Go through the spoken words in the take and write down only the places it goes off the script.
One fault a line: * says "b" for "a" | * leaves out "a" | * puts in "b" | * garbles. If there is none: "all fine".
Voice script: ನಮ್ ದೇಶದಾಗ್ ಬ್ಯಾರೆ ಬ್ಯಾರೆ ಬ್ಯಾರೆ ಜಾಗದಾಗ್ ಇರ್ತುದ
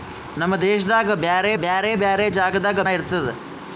all fine